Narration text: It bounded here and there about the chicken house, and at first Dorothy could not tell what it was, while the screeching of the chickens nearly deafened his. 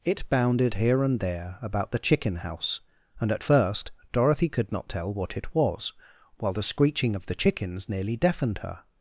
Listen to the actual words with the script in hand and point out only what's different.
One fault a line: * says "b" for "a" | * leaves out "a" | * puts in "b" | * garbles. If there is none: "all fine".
* says "her" for "his"